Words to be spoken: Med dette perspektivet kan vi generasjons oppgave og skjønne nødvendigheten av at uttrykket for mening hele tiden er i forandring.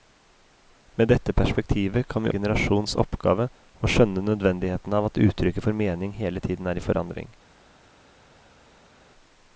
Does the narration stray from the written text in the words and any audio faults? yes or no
no